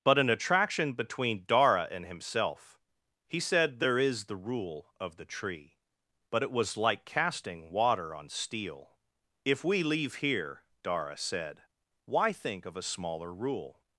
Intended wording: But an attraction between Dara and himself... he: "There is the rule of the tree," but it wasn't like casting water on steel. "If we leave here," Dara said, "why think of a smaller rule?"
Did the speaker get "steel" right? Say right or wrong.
right